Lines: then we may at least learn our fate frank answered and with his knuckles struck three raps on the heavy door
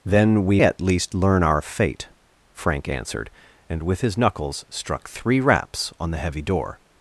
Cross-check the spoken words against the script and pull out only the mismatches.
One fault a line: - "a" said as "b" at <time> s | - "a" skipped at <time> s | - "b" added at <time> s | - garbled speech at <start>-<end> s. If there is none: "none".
- "may" skipped at 0.6 s